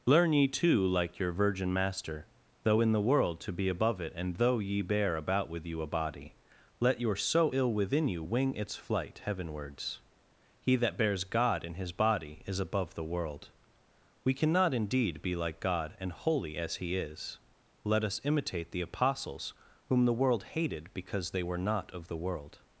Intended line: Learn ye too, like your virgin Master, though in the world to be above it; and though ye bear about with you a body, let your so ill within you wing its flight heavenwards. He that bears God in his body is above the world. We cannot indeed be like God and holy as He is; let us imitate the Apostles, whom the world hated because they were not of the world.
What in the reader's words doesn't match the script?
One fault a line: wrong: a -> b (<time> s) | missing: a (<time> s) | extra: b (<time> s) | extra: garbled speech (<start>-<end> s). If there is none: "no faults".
no faults